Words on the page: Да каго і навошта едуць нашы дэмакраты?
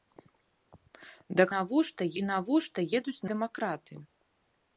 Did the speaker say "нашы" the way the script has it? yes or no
no